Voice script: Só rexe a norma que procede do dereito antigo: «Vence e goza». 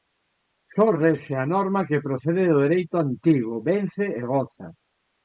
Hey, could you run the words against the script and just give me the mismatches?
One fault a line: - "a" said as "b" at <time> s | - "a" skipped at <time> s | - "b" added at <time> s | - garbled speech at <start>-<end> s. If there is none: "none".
none